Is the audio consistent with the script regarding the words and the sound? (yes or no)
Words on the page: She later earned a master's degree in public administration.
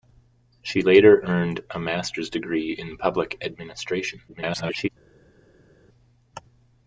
no